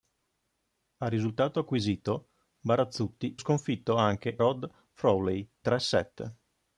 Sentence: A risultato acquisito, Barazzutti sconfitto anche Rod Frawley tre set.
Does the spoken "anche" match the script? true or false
true